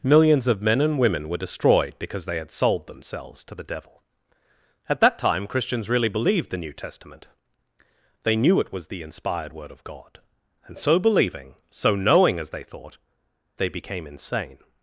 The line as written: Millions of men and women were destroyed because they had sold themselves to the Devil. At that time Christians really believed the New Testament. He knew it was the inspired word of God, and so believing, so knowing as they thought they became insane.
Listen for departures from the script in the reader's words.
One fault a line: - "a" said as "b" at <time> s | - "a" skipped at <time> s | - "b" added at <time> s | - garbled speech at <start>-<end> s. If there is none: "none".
- "He" said as "They" at 8.2 s